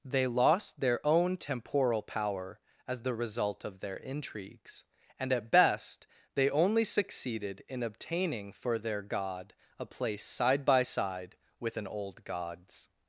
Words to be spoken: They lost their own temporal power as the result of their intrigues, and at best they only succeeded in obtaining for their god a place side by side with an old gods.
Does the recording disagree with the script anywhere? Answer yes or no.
no